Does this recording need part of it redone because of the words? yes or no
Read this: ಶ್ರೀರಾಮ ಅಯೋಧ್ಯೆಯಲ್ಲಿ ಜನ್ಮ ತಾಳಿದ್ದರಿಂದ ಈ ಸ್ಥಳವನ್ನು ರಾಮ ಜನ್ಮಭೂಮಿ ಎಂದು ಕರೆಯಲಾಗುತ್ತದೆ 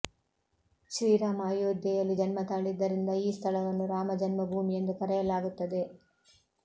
no